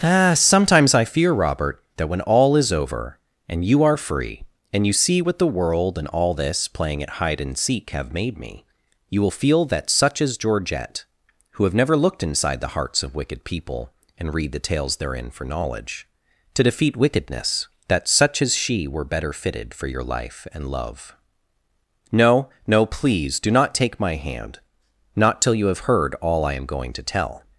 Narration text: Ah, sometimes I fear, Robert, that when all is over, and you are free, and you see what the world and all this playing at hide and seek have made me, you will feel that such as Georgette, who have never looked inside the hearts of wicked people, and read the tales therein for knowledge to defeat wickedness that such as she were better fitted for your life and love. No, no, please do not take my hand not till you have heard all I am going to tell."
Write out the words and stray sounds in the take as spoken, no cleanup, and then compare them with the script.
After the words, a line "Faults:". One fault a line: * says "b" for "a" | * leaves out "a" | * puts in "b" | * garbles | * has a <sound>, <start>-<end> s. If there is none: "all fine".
Ah, sometimes I fear, Robert, that when all is over, and you are free, and you see what the world and all this playing at hide and seek have made me, you will feel that such as Georgette, who have never looked inside the hearts of wicked people, and read the tales therein for knowledge to defeat wickedness that such as she were better fitted for your life and love. No, no, please do not take my hand not till you have heard all I am going to tell."
Faults:
all fine